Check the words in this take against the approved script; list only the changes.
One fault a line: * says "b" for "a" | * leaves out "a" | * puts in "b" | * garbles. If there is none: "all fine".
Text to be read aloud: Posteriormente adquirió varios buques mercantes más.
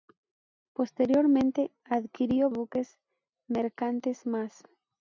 * leaves out "varios"